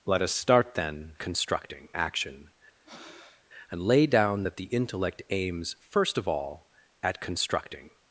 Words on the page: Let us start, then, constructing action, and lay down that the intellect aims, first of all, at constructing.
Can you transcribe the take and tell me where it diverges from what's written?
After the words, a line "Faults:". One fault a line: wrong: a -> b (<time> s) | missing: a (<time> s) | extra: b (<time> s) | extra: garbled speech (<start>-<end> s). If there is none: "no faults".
Let us start, then, constructing action, and lay down that the intellect aims, first of all, at constructing.
Faults:
no faults